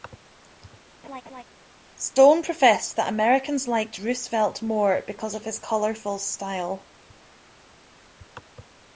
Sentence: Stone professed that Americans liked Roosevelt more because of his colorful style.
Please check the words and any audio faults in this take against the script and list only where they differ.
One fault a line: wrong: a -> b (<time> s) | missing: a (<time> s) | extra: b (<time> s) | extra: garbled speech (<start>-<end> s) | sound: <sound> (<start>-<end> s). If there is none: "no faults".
sound: laugh (1.0-1.4 s)